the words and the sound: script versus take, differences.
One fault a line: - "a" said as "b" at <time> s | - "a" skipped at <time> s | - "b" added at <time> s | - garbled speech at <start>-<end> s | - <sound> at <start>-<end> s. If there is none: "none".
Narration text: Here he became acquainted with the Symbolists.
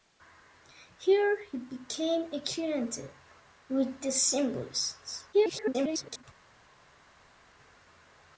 - garbled speech at 5.3-6.2 s